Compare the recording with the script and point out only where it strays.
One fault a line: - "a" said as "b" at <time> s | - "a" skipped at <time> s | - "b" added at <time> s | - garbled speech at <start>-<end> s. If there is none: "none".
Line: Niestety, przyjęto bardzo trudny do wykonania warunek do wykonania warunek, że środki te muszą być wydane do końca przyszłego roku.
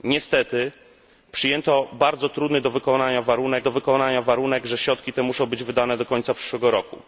none